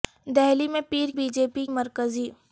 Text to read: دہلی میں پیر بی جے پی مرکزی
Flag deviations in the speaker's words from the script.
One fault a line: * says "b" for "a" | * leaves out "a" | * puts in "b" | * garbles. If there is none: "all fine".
all fine